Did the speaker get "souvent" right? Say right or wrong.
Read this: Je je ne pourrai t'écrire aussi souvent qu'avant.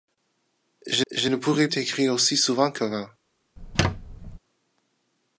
right